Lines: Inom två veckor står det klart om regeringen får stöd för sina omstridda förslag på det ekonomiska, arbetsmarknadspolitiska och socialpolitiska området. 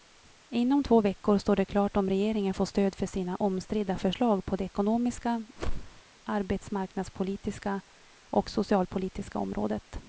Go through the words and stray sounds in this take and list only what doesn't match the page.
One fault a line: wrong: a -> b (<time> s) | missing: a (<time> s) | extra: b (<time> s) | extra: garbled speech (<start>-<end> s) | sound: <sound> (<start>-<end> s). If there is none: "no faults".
sound: whoosh (5.6-6.0 s)